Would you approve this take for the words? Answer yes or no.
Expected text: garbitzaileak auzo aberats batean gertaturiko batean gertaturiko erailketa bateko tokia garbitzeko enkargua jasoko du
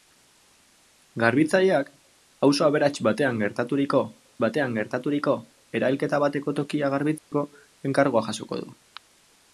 yes